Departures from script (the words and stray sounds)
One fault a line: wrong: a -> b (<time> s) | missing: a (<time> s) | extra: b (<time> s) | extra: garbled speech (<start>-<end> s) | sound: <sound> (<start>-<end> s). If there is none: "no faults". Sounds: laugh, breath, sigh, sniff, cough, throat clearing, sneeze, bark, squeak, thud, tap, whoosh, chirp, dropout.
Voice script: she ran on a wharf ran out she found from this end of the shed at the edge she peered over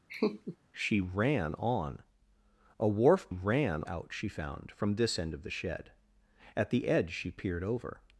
sound: laugh (0.1-0.6 s)